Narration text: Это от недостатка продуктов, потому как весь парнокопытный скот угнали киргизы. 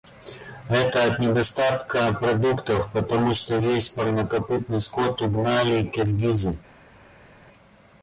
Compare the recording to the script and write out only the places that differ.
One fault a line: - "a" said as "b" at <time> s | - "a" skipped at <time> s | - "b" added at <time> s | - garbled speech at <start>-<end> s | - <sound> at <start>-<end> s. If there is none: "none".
- "как" said as "что" at 3.4 s